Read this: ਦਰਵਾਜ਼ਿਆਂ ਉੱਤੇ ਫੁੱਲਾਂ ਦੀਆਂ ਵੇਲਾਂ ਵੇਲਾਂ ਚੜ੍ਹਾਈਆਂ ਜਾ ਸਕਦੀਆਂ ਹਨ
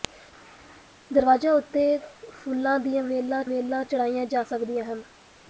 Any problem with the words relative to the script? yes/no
no